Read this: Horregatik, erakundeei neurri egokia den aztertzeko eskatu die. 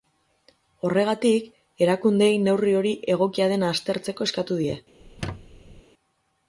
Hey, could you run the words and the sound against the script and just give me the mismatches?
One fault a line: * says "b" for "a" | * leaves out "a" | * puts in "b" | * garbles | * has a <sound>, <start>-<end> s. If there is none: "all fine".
* puts in "hori"
* has a squeak, 5.0-5.8 s